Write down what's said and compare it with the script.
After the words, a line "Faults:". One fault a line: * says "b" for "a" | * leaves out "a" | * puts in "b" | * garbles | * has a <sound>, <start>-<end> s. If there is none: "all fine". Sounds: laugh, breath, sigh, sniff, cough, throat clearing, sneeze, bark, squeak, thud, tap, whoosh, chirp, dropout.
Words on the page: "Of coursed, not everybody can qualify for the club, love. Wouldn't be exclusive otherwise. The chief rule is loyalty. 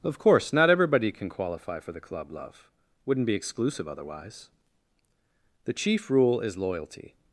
"Of course, not everybody can qualify for the club, love. Wouldn't be exclusive otherwise. The chief rule is loyalty.
Faults:
* says "course" for "coursed"